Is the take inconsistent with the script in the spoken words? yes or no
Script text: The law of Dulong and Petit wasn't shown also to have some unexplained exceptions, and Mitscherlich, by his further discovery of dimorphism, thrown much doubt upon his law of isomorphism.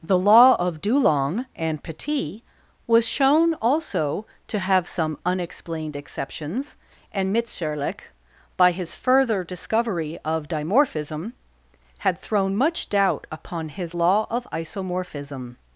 yes